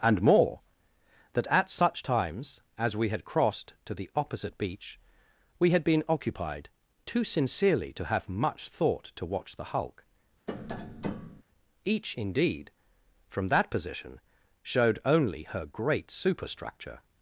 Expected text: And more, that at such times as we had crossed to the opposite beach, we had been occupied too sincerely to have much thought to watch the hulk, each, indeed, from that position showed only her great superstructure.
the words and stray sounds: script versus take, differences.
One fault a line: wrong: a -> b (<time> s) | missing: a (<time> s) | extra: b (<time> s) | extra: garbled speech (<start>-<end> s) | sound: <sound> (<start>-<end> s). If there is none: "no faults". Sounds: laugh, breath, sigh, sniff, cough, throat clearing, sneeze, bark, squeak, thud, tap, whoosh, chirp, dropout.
sound: tap (10.5-11.4 s)